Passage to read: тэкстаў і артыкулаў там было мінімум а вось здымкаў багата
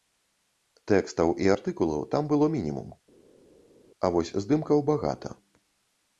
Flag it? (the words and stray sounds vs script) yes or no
no